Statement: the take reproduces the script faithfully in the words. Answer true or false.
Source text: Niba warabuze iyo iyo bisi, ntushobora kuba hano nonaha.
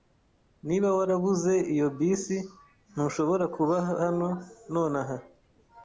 false